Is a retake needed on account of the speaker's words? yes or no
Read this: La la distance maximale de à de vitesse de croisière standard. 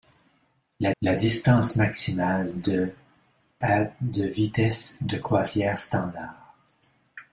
no